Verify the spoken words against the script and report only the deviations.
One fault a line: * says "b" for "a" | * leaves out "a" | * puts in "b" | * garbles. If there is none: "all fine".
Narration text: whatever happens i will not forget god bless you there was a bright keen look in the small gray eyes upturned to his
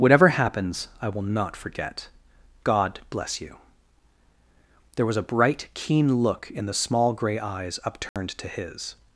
all fine